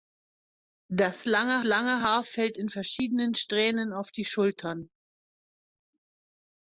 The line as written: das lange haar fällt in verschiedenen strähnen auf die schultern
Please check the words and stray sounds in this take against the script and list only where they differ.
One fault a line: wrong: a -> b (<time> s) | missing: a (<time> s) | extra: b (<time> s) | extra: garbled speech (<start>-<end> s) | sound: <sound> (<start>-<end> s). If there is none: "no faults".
extra: lange (1.6 s)